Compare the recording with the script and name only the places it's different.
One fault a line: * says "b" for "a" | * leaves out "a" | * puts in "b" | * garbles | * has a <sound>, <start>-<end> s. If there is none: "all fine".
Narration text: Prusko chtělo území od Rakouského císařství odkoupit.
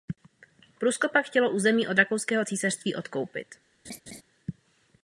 * puts in "pak"
* has a laugh, 3.8-4.2 s